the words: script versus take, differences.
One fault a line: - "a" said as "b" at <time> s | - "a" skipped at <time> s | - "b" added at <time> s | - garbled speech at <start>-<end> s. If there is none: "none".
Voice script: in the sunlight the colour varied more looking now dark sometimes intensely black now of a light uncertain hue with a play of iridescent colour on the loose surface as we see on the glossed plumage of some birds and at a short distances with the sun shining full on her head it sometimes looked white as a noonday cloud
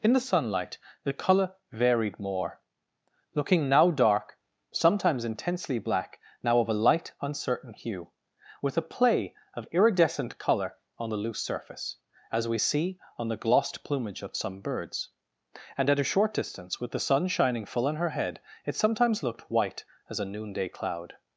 - "distances" said as "distance" at 16.3 s